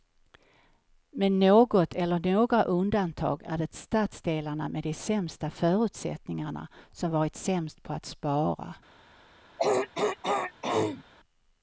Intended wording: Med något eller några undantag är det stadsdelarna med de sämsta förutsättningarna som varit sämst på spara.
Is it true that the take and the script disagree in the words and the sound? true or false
true